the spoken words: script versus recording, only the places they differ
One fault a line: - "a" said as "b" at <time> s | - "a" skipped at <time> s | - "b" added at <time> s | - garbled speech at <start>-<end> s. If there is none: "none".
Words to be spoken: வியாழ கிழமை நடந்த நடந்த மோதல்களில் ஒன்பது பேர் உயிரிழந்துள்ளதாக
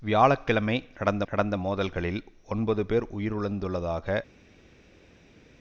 none